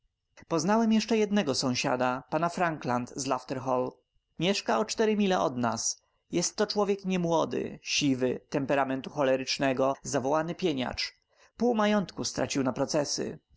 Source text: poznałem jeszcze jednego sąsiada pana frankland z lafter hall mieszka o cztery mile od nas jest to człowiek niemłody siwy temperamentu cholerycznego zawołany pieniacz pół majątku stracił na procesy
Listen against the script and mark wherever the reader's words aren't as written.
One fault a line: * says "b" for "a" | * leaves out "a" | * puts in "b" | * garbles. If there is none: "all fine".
all fine